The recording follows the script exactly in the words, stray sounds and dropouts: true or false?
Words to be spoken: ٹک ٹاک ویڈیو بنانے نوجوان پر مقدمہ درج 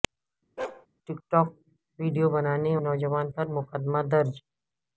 false